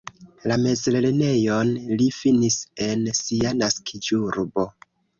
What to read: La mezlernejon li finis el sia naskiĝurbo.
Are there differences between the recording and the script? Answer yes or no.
yes